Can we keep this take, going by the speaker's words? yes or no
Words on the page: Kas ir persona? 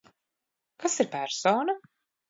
yes